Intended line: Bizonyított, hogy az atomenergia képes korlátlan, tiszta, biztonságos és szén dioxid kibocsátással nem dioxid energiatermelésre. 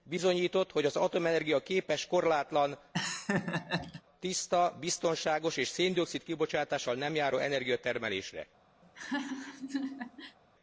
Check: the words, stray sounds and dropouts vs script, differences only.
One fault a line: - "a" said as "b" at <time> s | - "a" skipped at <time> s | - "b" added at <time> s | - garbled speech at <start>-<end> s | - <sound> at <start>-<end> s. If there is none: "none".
- laugh at 2.9-4.0 s
- "dioxid" said as "járó" at 7.1 s
- laugh at 8.8-10.4 s